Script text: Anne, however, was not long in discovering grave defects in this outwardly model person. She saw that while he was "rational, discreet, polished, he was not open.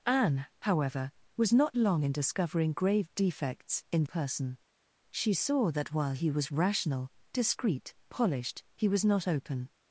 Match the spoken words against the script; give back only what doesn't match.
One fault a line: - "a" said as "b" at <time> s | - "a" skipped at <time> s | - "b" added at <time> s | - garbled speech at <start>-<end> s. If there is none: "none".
- "this outwardly model" skipped at 4.0 s